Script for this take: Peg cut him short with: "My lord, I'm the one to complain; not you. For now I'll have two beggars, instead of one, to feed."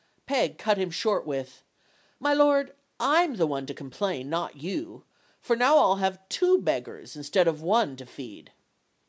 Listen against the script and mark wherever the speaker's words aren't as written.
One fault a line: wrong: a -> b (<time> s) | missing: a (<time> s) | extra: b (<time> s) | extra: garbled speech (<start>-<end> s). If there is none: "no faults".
no faults